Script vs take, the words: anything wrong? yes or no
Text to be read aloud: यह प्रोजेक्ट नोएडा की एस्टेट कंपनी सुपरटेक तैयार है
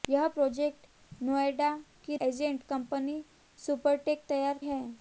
no